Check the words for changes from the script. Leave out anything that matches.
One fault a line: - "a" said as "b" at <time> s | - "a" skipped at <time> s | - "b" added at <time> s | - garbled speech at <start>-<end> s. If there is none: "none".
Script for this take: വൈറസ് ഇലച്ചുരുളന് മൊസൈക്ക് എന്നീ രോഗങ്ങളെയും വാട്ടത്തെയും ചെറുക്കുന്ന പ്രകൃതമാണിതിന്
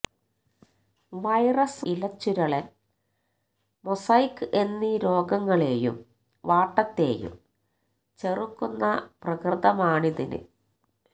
none